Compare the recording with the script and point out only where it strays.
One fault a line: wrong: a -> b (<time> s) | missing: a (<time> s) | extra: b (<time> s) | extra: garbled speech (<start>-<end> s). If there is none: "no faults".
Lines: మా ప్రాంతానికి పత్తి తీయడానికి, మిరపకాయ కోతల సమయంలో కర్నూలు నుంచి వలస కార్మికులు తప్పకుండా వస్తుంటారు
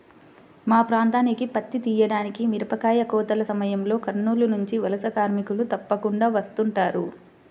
no faults